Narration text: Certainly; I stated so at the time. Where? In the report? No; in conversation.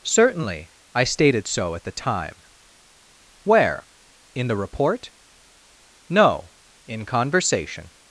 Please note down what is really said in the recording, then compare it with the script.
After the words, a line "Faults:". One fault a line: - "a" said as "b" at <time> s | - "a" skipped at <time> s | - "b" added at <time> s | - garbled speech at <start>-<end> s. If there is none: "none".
Certainly; I stated so at the time. Where? In the report? No; in conversation.
Faults:
none